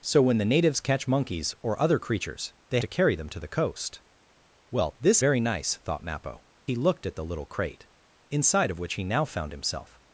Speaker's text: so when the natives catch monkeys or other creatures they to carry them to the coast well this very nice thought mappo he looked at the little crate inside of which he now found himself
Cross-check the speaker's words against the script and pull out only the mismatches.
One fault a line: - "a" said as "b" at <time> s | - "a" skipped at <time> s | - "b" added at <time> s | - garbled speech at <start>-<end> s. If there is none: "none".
none